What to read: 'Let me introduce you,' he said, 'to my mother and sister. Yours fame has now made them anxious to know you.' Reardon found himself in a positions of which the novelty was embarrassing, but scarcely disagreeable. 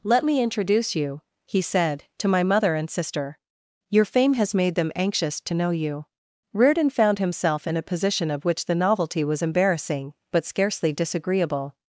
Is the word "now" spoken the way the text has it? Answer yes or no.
no